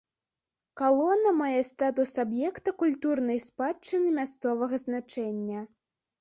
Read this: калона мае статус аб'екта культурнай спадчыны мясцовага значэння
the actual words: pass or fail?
pass